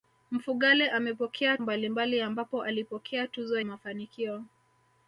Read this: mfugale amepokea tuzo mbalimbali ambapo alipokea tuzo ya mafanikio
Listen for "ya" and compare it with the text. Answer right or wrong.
wrong